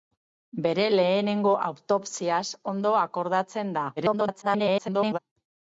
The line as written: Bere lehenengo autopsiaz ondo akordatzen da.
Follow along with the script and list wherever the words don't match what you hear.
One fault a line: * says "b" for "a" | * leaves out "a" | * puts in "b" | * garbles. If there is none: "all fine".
* garbles